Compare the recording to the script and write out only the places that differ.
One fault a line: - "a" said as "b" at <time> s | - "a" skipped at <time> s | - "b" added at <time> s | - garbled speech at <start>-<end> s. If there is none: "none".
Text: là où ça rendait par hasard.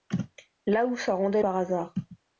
none